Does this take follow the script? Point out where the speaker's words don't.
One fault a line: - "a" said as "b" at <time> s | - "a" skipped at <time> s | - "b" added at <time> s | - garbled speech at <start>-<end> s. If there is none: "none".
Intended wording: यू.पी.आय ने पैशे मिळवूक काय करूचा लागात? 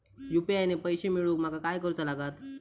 - "माका" added at 1.4 s